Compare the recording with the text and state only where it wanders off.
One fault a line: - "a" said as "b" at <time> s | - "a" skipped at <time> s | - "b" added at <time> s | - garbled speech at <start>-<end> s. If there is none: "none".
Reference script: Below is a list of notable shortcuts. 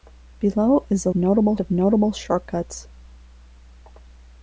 - "list" said as "notable" at 1.1 s